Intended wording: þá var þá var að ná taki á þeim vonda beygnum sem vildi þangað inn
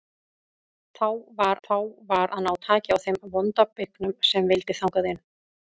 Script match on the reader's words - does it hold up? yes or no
yes